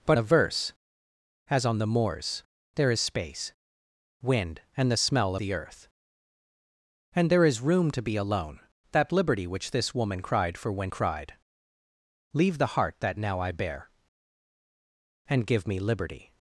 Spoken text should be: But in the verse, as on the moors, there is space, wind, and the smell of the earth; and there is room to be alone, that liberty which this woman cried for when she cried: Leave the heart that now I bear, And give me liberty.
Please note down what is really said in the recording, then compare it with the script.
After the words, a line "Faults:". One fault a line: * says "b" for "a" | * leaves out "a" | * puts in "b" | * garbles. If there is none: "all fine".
But the verse, as on the moors, there is space, wind, and the smell the earth; and there is room to be alone, that liberty which this woman cried for when cried: Leave the heart that now I bear, And give me liberty.
Faults:
* leaves out "in"
* leaves out "of"
* leaves out "she"